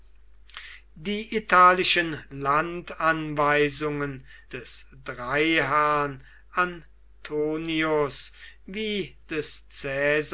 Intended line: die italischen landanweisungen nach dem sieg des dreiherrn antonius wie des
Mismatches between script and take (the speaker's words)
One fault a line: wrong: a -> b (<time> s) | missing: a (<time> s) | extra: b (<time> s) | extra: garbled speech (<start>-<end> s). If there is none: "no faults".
missing: nach dem sieg (4.2 s)